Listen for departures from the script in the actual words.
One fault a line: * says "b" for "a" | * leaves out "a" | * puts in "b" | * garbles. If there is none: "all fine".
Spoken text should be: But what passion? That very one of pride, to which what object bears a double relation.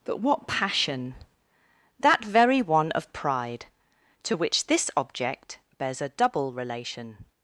* says "this" for "what"